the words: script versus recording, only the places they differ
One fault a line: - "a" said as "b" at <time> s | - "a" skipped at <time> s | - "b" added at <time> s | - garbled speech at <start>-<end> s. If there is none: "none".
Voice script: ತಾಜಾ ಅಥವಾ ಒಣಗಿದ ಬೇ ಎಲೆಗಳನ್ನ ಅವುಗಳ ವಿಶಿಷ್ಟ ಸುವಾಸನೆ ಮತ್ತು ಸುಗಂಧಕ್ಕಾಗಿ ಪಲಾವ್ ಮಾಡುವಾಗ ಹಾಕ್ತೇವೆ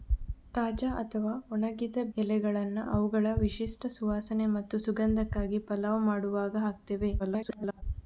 - "ಬೇ" skipped at 2.0 s
- garbled speech at 7.2-7.8 s